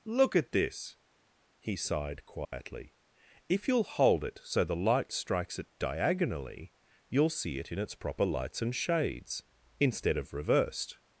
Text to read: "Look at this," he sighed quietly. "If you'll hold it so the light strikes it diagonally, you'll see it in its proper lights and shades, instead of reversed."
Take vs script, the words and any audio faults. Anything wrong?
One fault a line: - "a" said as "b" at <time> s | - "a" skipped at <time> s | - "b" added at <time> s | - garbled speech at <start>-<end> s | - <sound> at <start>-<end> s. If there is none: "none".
- dropout at 2.4-2.5 s